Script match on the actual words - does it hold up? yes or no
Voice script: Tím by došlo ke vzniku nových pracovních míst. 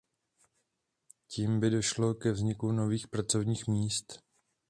yes